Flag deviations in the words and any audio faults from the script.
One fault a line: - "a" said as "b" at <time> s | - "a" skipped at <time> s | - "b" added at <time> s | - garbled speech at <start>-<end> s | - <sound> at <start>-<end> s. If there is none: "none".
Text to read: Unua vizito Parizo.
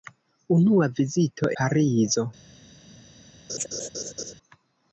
- laugh at 3.5-4.3 s